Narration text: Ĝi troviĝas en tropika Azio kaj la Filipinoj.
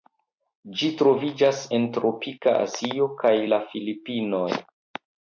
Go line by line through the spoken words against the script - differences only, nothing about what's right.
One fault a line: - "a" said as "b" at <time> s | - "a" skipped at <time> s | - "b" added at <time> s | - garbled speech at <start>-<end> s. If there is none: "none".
none